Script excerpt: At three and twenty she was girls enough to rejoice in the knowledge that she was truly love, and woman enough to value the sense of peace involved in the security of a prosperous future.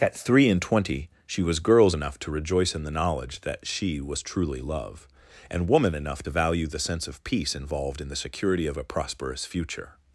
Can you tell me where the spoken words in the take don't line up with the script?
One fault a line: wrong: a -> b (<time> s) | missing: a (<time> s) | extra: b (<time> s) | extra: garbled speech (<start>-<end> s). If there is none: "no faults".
no faults